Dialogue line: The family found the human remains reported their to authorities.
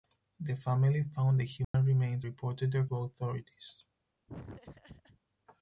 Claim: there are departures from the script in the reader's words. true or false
false